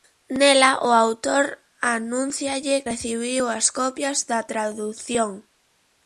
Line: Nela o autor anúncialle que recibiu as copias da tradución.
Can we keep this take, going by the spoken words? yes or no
no